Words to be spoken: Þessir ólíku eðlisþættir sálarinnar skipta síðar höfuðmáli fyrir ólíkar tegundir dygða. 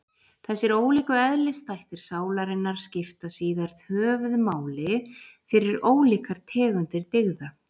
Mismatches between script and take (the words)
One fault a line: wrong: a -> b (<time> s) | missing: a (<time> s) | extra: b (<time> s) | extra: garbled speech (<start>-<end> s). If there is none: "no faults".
no faults